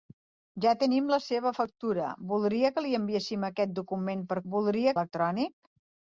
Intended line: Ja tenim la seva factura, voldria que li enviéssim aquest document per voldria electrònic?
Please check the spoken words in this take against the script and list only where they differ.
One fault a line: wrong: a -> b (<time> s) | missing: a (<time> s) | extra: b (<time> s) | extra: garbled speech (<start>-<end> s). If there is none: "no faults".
no faults